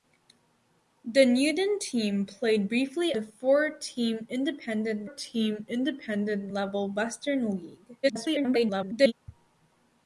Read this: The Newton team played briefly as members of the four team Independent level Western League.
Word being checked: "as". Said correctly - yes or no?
no